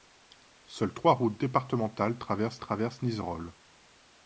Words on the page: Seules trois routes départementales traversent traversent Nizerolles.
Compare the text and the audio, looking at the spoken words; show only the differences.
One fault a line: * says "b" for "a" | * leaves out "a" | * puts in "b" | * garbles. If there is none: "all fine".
all fine